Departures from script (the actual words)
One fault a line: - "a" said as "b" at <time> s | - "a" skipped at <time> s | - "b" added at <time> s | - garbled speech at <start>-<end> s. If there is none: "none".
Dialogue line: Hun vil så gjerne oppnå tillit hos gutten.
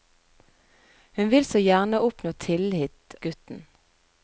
- "hos" skipped at 3.1 s